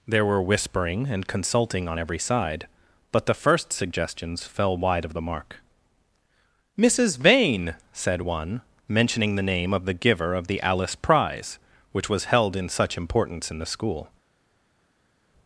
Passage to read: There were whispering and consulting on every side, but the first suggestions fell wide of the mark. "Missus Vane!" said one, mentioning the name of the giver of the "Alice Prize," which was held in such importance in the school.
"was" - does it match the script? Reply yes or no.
yes